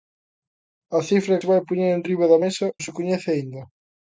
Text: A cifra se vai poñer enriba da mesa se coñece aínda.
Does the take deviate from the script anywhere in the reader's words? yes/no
no